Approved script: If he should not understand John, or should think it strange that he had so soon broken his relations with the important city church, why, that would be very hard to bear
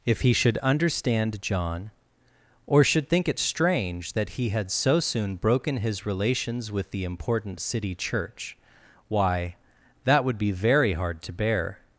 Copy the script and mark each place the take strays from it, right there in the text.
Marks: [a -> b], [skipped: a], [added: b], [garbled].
If he should [skipped: not] understand John, or should think it strange that he had so soon broken his relations with the important city church, why, that would be very hard to bear